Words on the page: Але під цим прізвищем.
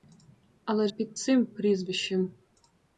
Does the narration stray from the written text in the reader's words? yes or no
no